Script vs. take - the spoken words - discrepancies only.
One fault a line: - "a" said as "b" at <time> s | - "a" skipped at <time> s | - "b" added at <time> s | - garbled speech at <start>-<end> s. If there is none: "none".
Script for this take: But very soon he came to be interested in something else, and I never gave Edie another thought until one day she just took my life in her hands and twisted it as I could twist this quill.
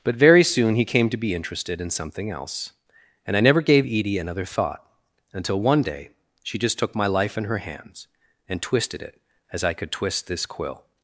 none